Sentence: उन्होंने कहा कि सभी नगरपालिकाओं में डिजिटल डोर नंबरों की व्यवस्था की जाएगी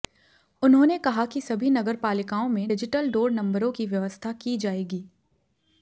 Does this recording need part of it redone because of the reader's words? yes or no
no